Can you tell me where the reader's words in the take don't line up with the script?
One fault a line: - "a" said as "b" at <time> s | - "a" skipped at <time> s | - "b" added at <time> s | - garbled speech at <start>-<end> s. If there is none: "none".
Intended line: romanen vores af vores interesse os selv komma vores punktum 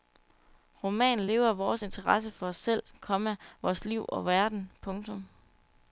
- "vores" said as "lever" at 1.3 s
- "for" added at 2.3 s
- "liv og verden" added at 3.9 s